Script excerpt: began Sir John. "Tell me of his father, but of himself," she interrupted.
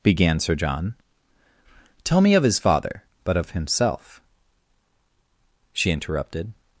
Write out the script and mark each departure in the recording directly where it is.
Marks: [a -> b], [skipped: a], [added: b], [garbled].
began Sir John. "Tell me of his father, but of himself," she interrupted.